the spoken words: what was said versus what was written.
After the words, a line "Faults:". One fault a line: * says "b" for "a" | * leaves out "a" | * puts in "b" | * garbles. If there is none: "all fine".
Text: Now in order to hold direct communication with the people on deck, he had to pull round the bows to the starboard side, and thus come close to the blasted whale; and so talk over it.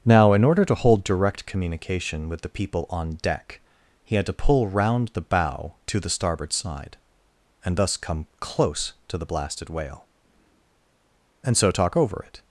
Now in order to hold direct communication with the people on deck, he had to pull round the bow to the starboard side, and thus come close to the blasted whale; and so talk over it.
Faults:
* says "bow" for "bows"